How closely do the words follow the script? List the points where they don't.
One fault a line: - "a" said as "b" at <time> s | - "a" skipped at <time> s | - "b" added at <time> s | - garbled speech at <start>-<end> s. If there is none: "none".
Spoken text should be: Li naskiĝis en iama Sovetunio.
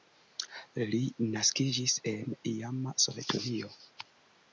none